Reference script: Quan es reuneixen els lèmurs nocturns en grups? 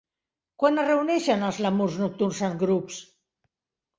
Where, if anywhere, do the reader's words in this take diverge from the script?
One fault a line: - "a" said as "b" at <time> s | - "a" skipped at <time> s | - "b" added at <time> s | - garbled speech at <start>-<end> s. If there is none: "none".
none